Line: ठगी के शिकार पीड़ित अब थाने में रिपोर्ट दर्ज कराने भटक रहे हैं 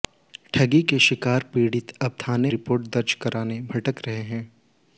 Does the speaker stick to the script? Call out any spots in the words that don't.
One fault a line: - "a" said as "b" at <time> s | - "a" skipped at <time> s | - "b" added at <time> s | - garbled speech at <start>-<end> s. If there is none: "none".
- "में" skipped at 2.5 s